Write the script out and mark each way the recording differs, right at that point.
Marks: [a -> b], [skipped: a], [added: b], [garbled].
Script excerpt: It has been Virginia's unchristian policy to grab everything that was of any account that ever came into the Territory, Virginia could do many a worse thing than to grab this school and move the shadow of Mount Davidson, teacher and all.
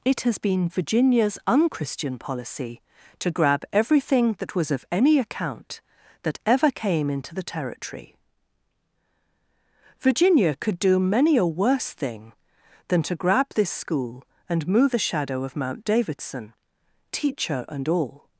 It has been Virginia's unchristian policy to grab everything that was of any account that ever came into the Territory, Virginia could do many a worse thing than to grab this school and move the shadow of Mount Davidson, teacher and all.